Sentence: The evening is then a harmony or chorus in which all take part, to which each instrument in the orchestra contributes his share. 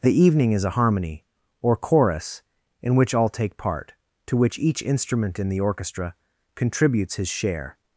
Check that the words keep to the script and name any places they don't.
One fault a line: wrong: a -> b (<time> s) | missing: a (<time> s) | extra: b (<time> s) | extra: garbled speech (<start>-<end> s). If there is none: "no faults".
missing: then (0.6 s)